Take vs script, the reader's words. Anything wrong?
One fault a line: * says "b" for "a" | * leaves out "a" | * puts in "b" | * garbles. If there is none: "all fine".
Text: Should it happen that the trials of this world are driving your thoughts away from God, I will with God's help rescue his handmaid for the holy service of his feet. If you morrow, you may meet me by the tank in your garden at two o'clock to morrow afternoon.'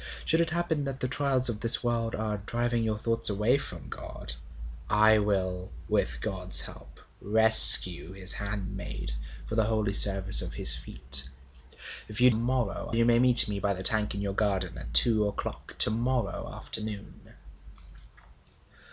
all fine